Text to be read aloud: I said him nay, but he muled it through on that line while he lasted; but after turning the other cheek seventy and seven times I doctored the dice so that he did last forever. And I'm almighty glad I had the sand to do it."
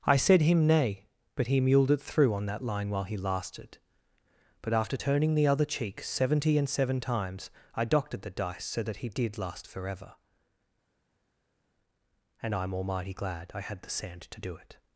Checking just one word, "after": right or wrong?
right